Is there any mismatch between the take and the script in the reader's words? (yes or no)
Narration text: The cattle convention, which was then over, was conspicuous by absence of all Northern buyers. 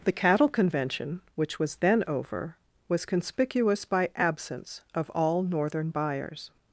no